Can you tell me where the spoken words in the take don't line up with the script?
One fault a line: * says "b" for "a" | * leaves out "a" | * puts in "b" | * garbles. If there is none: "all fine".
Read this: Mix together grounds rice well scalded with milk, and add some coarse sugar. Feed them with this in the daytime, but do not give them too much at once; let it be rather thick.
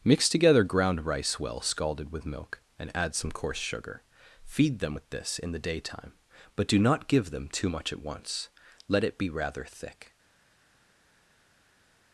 * says "ground" for "grounds"